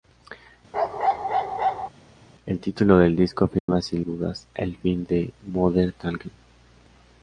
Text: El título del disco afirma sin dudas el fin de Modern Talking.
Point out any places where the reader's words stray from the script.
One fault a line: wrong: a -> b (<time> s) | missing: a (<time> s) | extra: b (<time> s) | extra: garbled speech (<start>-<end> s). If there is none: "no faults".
no faults